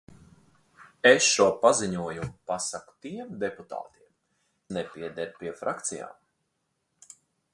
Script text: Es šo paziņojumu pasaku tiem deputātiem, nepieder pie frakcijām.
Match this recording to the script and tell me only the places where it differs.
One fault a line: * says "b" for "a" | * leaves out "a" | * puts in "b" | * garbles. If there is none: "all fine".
all fine